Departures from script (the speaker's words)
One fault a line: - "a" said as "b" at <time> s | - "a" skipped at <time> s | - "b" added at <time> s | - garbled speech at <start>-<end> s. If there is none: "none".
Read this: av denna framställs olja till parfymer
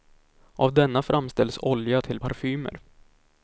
none